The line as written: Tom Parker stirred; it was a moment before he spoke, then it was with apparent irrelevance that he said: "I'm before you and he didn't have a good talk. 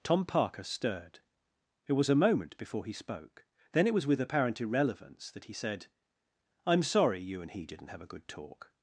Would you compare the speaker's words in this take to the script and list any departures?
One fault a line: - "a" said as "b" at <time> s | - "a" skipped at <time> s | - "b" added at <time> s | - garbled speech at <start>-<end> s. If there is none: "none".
- "before" said as "sorry" at 6.8 s